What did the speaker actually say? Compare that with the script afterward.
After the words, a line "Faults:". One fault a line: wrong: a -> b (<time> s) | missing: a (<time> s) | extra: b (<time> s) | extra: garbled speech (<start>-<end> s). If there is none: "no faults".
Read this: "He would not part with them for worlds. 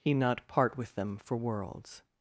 "He not part with them for worlds.
Faults:
missing: would (0.1 s)